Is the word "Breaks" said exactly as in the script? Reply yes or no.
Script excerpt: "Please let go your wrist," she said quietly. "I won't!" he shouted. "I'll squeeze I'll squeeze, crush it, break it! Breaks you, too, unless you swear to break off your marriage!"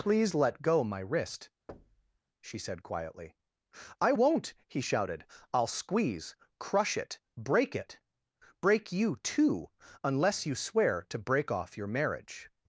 no